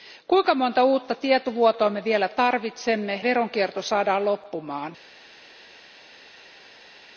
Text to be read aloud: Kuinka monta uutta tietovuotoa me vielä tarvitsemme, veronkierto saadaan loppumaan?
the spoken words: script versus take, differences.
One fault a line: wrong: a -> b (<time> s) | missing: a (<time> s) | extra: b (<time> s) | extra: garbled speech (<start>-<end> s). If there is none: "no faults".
no faults